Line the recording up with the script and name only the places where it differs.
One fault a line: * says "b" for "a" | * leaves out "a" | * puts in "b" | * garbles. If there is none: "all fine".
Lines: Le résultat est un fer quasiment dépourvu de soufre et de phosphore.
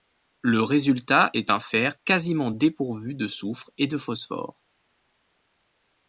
all fine